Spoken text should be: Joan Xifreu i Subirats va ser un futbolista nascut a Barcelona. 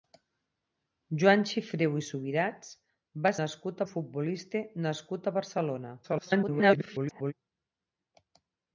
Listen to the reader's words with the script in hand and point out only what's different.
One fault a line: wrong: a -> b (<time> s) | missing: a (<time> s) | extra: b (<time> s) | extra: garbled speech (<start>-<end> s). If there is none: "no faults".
wrong: ser -> nascut (3.4 s)
extra: garbled speech (6.0-7.3 s)